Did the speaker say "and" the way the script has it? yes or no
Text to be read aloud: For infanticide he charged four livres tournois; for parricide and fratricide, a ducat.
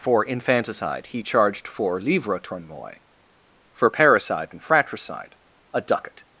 yes